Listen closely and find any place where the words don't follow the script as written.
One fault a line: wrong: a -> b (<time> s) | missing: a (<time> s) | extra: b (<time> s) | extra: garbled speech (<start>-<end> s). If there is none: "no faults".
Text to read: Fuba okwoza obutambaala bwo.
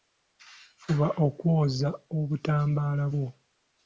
no faults